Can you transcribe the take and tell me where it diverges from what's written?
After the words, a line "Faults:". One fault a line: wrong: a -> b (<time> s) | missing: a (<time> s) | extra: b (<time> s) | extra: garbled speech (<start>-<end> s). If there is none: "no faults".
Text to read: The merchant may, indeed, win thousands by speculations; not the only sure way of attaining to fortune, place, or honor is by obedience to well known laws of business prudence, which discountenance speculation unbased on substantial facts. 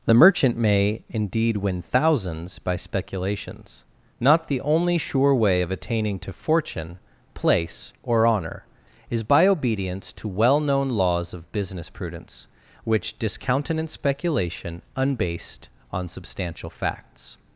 The merchant may, indeed, win thousands by speculations; not the only sure way of attaining to fortune, place, or honor is by obedience to well known laws of business prudence, which discountenance speculation unbased on substantial facts.
Faults:
no faults